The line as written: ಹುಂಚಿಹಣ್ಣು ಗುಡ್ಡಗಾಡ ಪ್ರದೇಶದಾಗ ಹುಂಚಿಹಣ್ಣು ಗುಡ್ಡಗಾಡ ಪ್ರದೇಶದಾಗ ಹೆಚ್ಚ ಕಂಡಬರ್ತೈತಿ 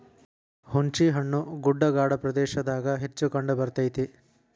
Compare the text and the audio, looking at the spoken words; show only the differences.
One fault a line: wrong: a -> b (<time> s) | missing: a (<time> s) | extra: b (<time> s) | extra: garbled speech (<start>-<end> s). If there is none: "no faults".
missing: ಹುಂಚಿಹಣ್ಣು ಗುಡ್ಡಗಾಡ ಪ್ರದೇಶದಾಗ (3.0 s)